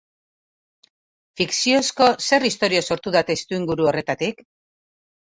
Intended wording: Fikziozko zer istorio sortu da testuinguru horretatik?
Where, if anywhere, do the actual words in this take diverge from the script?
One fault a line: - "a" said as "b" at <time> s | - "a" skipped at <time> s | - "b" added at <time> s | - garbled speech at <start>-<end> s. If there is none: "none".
none